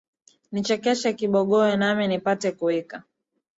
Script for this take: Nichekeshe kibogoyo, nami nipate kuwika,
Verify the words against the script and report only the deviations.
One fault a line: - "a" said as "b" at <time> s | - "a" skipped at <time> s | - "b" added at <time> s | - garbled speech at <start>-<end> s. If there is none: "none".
none